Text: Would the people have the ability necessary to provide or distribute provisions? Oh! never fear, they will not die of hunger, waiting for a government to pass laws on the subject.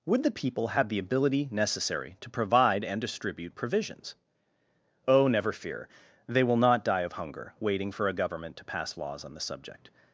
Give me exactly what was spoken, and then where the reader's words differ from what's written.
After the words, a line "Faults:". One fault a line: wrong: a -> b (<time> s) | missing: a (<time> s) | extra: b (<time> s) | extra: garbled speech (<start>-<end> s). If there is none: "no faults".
Would the people have the ability necessary to provide and distribute provisions? Oh! never fear, they will not die of hunger, waiting for a government to pass laws on the subject.
Faults:
wrong: or -> and (2.8 s)